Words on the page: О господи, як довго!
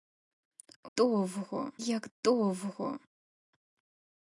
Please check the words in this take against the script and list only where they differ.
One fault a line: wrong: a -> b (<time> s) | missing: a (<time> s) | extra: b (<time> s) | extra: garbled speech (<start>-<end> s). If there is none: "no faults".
wrong: господи -> довго (1.0 s)